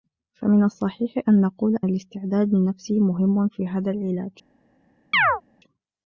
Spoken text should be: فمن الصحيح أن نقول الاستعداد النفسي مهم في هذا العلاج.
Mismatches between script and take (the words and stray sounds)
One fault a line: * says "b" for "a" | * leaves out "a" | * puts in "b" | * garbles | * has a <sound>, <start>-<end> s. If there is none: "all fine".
* has a chirp, 5.1-5.4 s